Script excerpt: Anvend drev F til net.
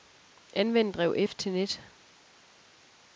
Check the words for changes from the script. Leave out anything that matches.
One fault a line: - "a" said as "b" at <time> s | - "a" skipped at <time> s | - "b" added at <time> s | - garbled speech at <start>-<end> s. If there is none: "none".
none